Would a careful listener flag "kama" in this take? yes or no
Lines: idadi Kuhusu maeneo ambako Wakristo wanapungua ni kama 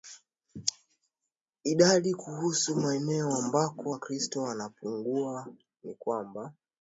yes